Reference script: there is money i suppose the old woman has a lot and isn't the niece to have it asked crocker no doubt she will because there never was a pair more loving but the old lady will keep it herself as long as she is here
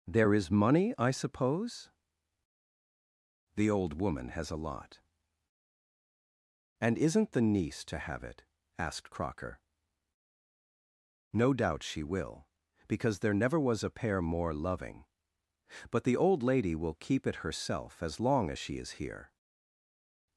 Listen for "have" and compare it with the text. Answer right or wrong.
right